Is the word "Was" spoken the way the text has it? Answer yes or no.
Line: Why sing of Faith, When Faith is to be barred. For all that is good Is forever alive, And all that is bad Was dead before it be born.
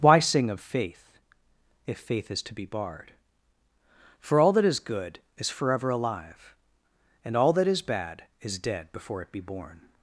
no